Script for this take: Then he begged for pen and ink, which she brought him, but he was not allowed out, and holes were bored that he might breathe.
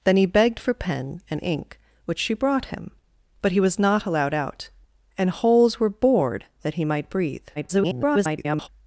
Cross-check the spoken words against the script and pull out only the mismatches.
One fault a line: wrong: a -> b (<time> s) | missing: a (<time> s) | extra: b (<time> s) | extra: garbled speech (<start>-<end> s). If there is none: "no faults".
extra: garbled speech (7.6-8.7 s)